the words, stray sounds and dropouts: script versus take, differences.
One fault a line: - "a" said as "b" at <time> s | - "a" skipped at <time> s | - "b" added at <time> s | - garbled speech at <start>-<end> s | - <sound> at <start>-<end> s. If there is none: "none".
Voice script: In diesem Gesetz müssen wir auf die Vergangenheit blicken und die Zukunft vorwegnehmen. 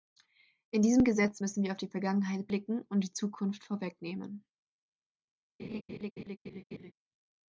- laugh at 5.6-6.9 s